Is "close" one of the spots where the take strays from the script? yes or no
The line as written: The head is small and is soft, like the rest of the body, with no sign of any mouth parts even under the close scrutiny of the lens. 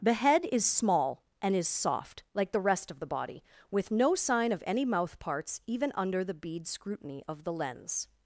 yes